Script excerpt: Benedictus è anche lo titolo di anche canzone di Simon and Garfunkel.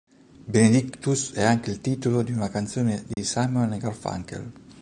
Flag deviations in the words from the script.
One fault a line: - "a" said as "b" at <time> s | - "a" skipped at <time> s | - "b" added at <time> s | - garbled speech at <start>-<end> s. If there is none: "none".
- "lo" said as "il" at 1.7 s
- "anche" said as "una" at 2.3 s